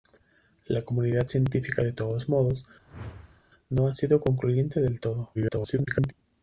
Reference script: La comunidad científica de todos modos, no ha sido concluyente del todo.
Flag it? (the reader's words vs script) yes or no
yes